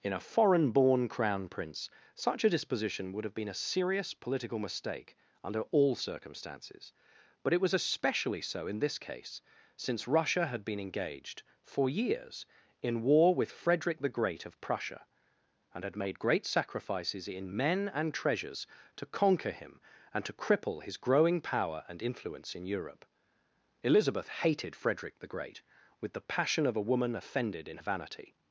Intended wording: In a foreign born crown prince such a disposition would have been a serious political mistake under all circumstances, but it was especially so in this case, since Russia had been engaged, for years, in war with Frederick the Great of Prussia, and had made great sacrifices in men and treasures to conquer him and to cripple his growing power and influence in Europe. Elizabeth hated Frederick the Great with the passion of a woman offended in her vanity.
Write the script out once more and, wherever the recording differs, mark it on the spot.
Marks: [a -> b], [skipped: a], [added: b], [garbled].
In a foreign born crown prince such a disposition would have been a serious political mistake under all circumstances, but it was especially so in this case, since Russia had been engaged, for years, in war with Frederick the Great of Prussia, and had made great sacrifices in men and treasures to conquer him and to cripple his growing power and influence in Europe. Elizabeth hated Frederick the Great with the passion of a woman offended in [skipped: her] vanity.